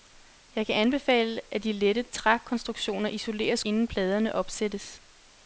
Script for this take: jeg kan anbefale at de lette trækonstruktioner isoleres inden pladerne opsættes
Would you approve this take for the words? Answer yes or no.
yes